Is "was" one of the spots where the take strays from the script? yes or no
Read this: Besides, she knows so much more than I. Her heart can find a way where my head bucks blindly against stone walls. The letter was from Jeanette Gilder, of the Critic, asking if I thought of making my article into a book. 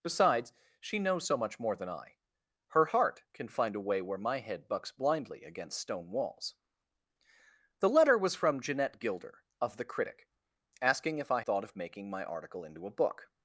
no